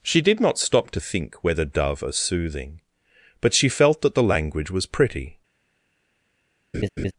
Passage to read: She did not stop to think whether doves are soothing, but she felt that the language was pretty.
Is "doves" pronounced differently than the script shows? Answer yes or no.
yes